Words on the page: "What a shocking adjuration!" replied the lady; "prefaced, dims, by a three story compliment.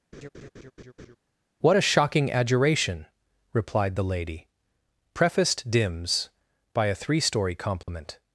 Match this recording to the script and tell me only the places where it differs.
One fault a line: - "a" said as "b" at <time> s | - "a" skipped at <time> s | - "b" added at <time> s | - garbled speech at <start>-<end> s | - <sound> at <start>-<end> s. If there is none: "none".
- laugh at 0.1-1.2 s
- dropout at 7.8-7.9 s